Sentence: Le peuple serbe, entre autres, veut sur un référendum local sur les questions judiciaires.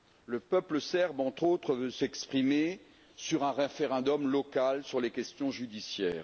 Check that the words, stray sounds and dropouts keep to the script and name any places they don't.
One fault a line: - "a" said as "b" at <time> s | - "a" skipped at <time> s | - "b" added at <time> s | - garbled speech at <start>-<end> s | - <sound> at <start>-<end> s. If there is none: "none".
- "s'exprimer" added at 1.9 s